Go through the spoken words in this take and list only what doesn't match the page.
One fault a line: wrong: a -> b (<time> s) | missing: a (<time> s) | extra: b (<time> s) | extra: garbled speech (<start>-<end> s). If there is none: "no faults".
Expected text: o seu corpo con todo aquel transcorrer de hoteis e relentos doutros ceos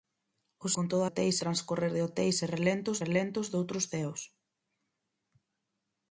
missing: seu corpo (0.7 s)
wrong: aquel -> hoteis (1.1 s)
extra: relentos (3.0 s)